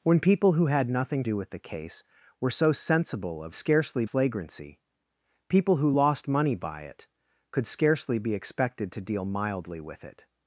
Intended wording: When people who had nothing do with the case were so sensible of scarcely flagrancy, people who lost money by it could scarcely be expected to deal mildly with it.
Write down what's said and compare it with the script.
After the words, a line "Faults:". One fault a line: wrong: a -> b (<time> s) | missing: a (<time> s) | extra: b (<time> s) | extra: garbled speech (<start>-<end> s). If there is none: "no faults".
When people who had nothing do with the case were so sensible of scarcely flagrancy, people who lost money by it could scarcely be expected to deal mildly with it.
Faults:
no faults